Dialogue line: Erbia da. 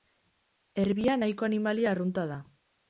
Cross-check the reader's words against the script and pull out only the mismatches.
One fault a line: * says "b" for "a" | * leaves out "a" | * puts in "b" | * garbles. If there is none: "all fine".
* puts in "nahiko animalia arrunta"